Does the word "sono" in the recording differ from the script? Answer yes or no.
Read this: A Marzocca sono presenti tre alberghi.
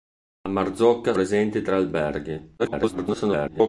yes